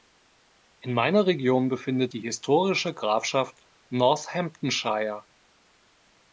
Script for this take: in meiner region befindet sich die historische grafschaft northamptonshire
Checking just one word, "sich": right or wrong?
wrong